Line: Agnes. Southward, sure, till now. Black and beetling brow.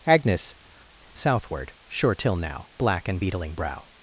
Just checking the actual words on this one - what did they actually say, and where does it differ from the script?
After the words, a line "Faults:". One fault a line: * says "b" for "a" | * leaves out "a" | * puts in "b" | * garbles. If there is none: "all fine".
Agnes. Southward, sure, till now. Black and beetling brow.
Faults:
all fine